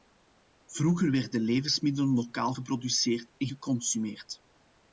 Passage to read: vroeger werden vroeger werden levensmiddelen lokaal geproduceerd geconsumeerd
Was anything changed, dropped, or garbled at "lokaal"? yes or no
no